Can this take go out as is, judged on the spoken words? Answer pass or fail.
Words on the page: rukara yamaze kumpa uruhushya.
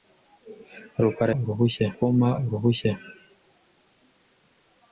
fail